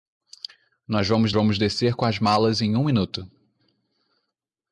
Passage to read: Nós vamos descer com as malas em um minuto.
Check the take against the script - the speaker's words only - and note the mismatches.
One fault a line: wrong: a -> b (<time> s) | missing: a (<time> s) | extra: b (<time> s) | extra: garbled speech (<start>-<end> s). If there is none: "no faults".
extra: vamos (1.3 s)